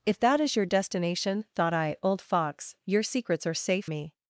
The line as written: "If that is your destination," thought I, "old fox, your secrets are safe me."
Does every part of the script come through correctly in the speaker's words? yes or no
yes